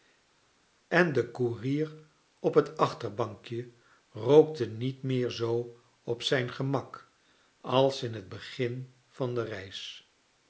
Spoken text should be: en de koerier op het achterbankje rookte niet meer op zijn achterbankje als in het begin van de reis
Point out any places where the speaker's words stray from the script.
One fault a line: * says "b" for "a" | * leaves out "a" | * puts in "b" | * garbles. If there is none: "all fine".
* puts in "zoo"
* says "gemak" for "achterbankje"